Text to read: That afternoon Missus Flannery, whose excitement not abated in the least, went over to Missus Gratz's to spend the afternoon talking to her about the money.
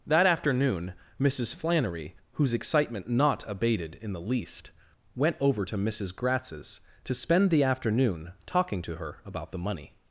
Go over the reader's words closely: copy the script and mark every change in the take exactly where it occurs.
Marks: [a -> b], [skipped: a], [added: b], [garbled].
That afternoon Missus Flannery, whose excitement not abated in the least, went over to Missus Gratz's to spend the afternoon talking to her about the money.